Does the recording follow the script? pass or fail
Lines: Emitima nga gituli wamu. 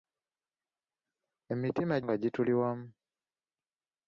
pass